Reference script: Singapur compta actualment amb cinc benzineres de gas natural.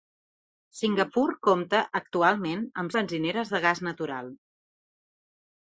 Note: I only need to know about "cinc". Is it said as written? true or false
false